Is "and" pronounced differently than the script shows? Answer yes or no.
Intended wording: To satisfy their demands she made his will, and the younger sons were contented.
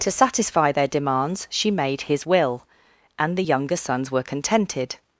no